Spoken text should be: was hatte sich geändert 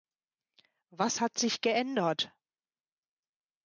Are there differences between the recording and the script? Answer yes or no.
yes